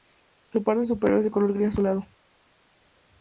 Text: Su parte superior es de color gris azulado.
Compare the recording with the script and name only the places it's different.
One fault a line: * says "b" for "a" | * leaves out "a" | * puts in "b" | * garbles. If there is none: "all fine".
all fine